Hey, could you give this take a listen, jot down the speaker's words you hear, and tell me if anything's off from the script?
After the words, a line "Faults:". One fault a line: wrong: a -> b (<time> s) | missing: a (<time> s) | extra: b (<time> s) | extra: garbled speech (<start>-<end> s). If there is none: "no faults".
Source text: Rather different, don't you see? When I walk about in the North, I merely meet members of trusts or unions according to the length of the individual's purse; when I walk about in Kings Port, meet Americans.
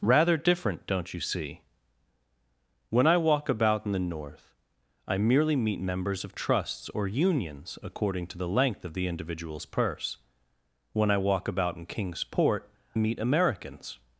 Rather different, don't you see? When I walk about in the North, I merely meet members of trusts or unions according to the length of the individual's purse; when I walk about in Kings Port, meet Americans.
Faults:
no faults